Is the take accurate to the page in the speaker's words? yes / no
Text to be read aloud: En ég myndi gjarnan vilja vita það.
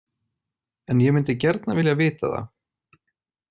yes